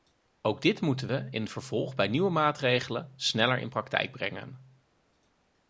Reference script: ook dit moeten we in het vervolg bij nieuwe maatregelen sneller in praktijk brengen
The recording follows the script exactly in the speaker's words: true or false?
true